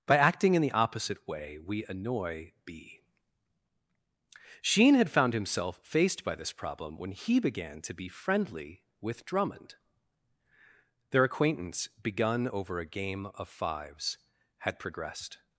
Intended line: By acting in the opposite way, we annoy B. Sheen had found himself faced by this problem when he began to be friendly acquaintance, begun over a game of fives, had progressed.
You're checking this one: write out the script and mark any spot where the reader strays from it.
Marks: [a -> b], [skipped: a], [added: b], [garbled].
By acting in the opposite way, we annoy B. Sheen had found himself faced by this problem when he began to be friendly [added: with Drummond Their] acquaintance, begun over a game of fives, had progressed.